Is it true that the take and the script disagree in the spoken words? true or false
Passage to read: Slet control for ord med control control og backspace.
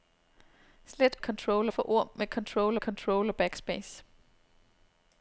false